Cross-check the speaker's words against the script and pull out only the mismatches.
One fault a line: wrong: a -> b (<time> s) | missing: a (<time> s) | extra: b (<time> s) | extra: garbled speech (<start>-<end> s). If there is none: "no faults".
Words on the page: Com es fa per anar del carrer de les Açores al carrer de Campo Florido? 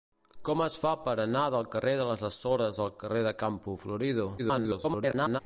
extra: garbled speech (4.4-5.4 s)